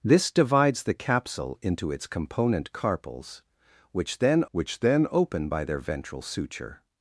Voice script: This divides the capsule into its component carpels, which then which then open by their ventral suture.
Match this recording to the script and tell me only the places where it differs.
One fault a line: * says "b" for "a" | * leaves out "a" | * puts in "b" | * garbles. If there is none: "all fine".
all fine